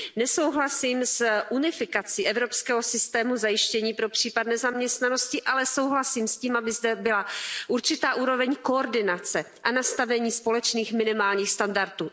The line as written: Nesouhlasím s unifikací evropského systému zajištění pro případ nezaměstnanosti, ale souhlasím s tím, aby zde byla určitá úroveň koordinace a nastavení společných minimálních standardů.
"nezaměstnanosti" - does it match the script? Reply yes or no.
yes